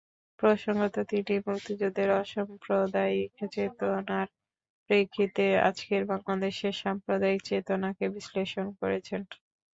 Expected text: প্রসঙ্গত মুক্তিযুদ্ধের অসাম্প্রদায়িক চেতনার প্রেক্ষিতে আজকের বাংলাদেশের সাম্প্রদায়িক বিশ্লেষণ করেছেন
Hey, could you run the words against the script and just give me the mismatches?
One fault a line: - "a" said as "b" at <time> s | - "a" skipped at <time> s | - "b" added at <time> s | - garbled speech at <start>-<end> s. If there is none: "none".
- "তিনি" added at 1.1 s
- "চেতনাকে" added at 7.5 s